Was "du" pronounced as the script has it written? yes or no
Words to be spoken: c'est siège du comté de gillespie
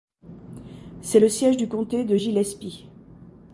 yes